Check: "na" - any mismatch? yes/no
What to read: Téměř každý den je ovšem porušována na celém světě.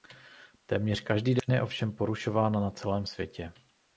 no